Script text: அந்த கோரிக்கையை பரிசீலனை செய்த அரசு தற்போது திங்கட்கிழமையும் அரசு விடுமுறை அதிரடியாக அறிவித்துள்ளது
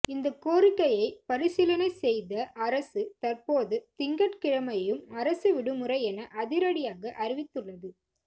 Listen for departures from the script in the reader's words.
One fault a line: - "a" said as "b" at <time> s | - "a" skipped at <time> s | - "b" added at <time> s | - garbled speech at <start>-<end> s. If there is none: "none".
- "அந்த" said as "இந்த" at 0.1 s
- "என" added at 6.0 s